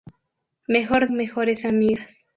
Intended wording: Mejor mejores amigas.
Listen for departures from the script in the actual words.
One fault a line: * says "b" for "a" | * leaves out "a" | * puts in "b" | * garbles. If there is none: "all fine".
all fine